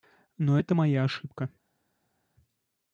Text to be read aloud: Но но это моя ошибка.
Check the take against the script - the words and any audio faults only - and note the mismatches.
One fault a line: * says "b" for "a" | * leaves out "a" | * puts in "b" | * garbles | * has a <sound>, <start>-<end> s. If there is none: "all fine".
* leaves out "но"